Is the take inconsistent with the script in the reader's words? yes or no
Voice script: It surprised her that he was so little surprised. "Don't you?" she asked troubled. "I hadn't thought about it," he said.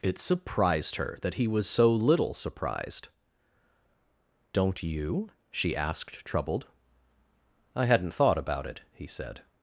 no